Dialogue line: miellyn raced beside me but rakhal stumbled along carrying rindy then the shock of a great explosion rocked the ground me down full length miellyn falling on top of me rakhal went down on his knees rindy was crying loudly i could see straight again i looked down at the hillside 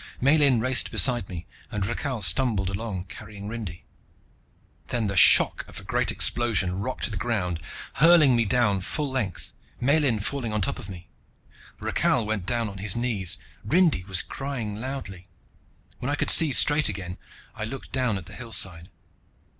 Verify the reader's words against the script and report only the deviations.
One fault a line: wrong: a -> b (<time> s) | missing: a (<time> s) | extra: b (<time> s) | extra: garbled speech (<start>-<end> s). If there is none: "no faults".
wrong: but -> and (1.7 s)
extra: hurling (8.0 s)
extra: when (16.0 s)